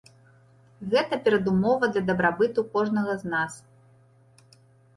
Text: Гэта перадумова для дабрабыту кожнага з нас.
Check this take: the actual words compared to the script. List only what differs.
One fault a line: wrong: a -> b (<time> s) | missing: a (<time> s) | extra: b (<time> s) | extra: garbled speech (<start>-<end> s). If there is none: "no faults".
no faults